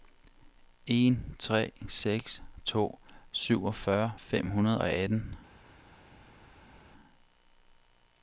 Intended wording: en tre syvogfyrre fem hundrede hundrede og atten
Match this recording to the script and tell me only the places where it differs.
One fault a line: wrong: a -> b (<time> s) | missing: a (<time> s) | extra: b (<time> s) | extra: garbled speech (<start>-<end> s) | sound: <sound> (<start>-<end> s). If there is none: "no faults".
extra: seks to (1.9 s)
missing: hundrede (4.8 s)